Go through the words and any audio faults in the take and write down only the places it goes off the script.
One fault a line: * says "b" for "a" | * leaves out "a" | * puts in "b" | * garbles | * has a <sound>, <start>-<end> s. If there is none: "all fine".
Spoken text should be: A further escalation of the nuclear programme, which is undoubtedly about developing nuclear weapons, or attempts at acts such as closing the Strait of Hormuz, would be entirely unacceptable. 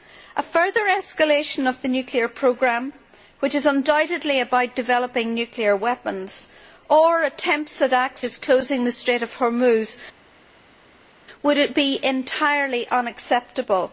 * leaves out "such"